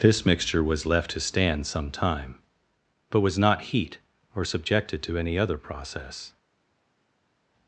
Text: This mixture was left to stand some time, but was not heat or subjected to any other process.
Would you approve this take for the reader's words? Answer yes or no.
yes